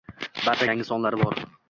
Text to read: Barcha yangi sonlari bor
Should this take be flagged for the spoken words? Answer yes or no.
no